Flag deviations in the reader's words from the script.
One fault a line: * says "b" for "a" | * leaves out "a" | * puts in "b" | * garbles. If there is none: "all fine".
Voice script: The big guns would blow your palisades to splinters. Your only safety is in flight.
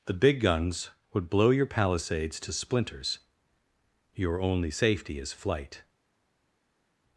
* leaves out "in"